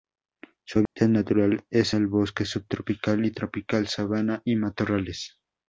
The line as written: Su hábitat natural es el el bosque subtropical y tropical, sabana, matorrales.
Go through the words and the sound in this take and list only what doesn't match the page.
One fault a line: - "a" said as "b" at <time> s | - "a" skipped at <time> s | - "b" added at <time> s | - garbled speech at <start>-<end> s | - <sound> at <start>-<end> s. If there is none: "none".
- dropout at 0.9-1.0 s
- "el" skipped at 2.1 s
- "y" added at 4.4 s